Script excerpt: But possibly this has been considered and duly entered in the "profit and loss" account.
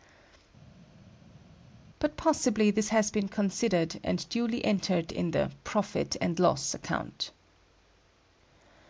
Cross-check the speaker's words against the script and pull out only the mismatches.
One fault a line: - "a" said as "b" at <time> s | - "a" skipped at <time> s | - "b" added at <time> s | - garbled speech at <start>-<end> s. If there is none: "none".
none